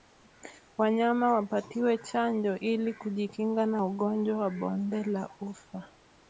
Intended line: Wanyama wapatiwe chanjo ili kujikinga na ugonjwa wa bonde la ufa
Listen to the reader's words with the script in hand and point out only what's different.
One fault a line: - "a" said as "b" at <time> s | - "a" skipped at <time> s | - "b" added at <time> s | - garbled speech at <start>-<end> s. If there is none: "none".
none